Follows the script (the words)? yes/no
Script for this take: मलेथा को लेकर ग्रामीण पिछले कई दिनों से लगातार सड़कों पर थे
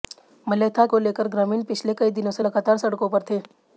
yes